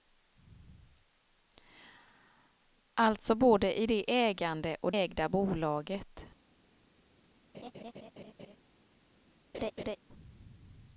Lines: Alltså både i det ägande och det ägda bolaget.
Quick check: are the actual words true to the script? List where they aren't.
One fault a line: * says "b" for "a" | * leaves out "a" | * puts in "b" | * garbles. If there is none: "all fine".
* leaves out "det"